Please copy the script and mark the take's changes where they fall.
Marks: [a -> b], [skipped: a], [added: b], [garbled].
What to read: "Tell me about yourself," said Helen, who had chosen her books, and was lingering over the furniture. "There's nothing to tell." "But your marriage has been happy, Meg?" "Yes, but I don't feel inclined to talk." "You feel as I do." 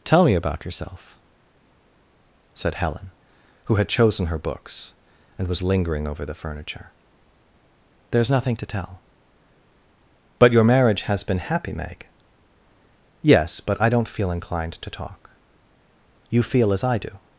"Tell me about yourself," said Helen, who had chosen her books, and was lingering over the furniture. "There's nothing to tell." "But your marriage has been happy, Meg?" "Yes, but I don't feel inclined to talk." "You feel as I do."